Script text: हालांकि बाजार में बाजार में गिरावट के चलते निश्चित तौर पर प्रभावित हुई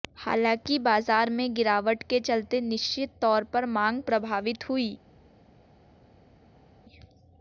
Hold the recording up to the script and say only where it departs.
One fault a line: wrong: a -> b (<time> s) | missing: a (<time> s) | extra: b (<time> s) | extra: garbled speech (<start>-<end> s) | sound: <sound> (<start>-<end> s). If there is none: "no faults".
missing: बाजार में (1.5 s)
extra: मांग (3.7 s)